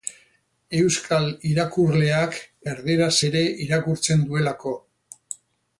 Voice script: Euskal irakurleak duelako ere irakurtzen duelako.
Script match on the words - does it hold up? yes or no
no